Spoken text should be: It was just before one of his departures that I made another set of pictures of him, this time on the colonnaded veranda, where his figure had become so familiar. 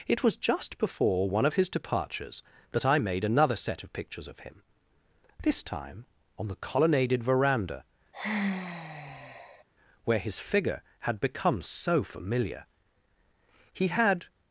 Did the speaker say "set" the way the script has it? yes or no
yes